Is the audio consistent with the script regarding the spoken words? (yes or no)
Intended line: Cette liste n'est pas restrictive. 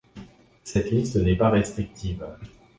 yes